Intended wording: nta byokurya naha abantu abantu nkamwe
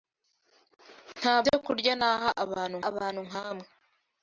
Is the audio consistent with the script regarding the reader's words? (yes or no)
yes